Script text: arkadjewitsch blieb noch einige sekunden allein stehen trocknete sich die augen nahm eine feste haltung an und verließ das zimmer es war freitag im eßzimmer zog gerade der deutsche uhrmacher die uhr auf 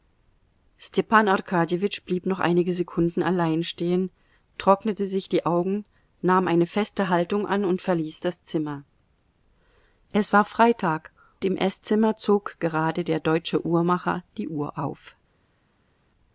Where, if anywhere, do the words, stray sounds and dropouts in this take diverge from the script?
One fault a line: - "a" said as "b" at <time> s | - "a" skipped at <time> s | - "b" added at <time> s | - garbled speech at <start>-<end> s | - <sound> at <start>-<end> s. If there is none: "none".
none